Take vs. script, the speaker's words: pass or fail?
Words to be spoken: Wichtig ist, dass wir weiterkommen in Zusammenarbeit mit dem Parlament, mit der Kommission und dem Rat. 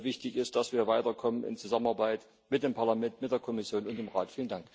pass